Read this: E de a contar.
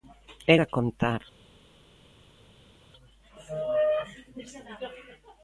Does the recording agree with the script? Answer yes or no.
yes